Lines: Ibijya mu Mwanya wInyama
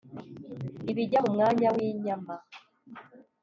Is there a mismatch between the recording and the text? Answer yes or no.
no